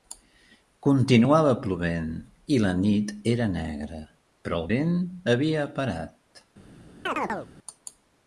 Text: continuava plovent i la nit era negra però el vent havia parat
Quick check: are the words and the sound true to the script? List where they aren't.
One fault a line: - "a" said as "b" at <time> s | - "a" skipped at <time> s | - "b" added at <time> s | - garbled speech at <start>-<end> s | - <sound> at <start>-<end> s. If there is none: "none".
- chirp at 7.1-7.5 s